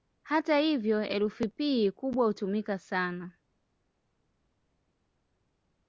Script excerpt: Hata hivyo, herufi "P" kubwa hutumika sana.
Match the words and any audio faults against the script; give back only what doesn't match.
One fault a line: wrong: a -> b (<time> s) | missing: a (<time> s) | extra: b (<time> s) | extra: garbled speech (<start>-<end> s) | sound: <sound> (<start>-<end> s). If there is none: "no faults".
no faults